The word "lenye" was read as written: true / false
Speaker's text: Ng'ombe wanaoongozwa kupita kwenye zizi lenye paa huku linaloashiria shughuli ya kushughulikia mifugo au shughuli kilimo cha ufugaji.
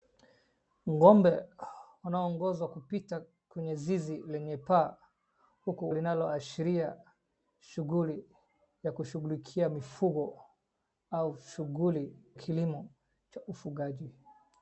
true